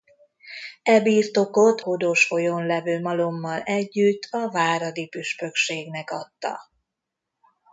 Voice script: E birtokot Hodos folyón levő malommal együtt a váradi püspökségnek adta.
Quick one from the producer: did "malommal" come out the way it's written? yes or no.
yes